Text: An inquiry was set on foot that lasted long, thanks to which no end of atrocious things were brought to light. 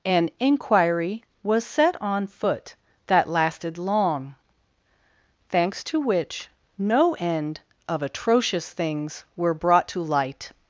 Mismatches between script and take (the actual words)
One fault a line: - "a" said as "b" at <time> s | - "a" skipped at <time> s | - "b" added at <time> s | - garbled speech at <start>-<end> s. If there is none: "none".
none